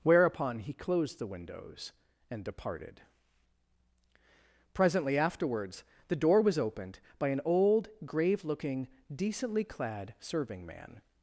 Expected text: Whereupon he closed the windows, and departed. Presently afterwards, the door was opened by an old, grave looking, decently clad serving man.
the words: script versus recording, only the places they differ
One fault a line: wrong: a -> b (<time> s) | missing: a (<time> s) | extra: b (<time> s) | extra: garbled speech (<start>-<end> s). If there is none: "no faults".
no faults